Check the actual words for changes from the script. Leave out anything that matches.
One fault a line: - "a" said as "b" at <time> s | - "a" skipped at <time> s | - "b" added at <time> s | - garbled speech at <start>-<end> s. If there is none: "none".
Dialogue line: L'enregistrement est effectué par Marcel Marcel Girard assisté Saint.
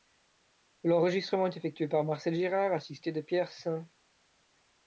- "Marcel" skipped at 2.3 s
- "de Pierre" added at 3.1 s